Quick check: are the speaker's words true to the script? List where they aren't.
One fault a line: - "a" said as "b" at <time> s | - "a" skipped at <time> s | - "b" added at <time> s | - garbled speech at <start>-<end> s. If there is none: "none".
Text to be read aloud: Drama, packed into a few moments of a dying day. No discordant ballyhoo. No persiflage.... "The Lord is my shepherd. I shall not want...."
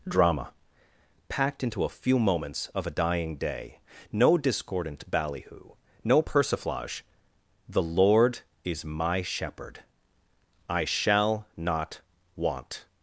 none